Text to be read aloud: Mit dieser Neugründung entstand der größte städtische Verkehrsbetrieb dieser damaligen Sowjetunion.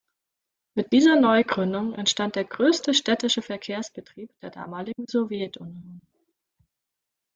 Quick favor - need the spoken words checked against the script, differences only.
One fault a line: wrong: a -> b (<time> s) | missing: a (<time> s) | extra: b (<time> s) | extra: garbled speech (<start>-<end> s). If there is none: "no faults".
wrong: dieser -> der (4.4 s)